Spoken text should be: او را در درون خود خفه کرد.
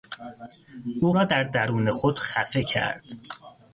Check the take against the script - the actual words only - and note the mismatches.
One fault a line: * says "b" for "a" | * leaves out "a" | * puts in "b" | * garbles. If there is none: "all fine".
all fine